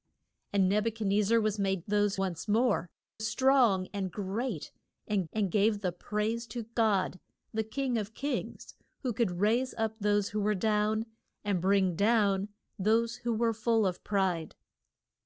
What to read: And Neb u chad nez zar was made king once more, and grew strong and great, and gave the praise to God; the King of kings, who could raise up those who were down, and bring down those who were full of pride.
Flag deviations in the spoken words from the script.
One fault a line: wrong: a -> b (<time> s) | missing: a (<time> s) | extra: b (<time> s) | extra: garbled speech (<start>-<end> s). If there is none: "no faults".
wrong: king -> those (1.8 s)
missing: and grew (2.9 s)
extra: and (5.3 s)